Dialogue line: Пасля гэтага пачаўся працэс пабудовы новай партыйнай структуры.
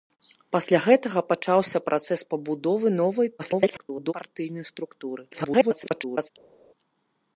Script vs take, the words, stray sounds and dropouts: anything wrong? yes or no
yes